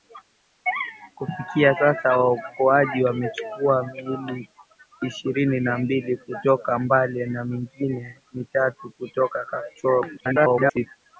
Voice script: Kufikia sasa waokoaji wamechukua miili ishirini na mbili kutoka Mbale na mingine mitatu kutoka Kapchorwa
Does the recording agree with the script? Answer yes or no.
no